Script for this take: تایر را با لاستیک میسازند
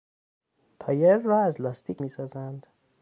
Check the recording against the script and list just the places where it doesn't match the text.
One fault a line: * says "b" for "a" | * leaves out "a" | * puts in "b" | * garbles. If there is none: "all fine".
* says "از" for "با"